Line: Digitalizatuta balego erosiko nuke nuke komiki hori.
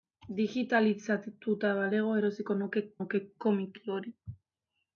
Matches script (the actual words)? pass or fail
pass